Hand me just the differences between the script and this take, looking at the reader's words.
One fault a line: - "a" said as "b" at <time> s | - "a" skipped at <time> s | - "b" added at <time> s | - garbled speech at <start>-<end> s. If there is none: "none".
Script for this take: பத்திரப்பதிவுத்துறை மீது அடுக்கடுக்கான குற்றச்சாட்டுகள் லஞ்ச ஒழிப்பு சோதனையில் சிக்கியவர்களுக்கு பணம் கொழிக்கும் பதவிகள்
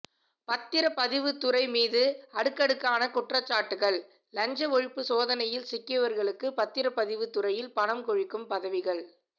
- "பத்திரப்பதிவு துறையில்" added at 6.6 s